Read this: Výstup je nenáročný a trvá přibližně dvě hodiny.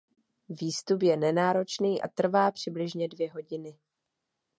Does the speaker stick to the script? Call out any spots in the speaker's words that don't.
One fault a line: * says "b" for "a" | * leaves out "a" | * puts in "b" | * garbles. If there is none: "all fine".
all fine